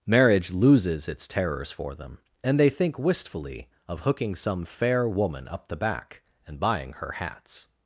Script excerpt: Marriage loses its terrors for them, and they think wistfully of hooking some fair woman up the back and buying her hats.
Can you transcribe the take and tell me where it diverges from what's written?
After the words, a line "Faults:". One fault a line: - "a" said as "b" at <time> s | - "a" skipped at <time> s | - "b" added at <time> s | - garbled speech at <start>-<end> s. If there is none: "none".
Marriage loses its terrors for them, and they think wistfully of hooking some fair woman up the back and buying her hats.
Faults:
none